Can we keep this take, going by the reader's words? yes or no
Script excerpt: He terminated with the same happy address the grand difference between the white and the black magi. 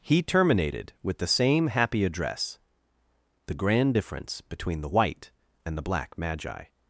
yes